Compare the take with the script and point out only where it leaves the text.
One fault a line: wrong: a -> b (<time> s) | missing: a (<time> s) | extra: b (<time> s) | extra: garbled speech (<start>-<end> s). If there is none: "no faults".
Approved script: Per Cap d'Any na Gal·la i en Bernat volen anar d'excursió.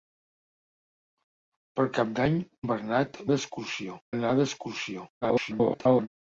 missing: na Gal·la i (2.4 s)
wrong: volen -> d'excursió (3.3 s)
extra: garbled speech (5.2-6.1 s)